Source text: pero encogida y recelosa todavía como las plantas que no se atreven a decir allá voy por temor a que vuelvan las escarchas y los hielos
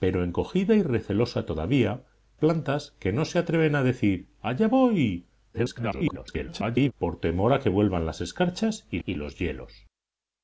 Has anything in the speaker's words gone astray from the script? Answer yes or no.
yes